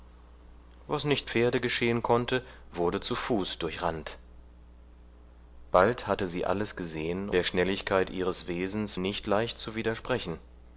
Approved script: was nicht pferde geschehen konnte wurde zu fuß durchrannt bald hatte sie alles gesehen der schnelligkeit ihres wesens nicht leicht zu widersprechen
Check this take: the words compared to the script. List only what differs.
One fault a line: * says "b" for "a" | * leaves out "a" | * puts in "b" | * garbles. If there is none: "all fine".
all fine